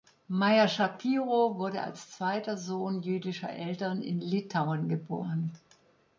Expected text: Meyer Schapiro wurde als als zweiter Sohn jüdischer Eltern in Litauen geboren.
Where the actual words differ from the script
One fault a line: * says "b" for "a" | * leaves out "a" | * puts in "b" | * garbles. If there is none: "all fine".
* leaves out "als"